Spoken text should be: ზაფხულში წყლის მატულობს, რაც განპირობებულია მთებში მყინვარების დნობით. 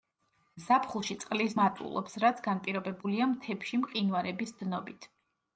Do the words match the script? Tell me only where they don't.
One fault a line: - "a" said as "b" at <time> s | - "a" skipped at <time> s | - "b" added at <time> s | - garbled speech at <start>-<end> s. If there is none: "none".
none